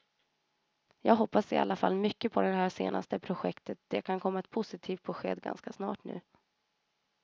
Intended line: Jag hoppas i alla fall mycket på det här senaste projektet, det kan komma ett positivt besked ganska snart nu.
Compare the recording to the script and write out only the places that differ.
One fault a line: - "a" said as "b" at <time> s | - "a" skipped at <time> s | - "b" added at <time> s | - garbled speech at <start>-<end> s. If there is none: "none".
none